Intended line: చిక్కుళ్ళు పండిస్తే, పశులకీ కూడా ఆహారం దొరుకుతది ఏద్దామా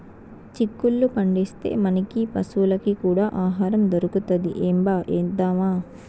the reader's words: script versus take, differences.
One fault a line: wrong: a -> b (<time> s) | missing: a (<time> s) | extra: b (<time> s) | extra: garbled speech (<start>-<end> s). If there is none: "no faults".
extra: మనకీ (1.8 s)
extra: ఏంబా (4.6 s)